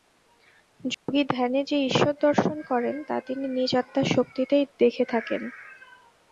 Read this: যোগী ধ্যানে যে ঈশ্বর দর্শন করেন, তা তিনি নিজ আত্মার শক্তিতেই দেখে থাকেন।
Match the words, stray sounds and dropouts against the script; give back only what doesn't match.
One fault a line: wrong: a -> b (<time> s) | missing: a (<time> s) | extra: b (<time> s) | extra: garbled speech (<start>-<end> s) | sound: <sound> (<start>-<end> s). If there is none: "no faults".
sound: dropout (0.9-1.1 s)